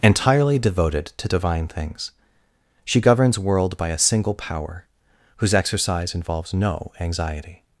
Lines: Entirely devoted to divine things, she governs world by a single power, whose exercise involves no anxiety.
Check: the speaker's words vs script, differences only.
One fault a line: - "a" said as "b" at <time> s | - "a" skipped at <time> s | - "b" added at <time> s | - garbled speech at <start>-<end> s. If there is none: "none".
none